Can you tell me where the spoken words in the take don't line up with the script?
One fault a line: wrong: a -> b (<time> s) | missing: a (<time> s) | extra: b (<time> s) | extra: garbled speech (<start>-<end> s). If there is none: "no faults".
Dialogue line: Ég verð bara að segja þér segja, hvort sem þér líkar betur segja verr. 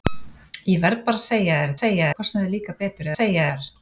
no faults